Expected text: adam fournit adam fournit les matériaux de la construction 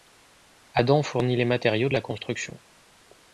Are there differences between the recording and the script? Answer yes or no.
yes